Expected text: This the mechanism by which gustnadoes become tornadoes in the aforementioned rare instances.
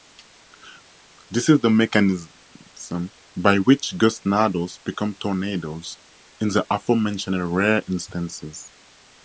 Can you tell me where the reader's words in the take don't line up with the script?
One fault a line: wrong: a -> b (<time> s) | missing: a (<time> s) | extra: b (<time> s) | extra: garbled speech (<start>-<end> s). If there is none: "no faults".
extra: is (1.5 s)